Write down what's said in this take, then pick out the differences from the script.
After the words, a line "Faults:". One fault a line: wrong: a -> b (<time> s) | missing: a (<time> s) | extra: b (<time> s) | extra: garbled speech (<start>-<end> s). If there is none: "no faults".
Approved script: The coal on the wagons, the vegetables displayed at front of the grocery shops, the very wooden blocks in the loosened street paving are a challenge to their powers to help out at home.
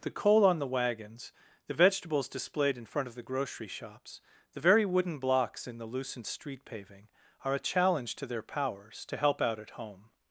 The coal on the wagons, the vegetables displayed in front of the grocery shops, the very wooden blocks in the loosened street paving are a challenge to their powers to help out at home.
Faults:
wrong: at -> in (2.8 s)